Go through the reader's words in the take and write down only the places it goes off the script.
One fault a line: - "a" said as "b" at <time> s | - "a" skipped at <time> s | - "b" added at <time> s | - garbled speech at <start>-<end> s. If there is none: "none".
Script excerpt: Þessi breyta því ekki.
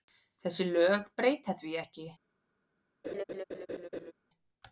- "lög" added at 0.7 s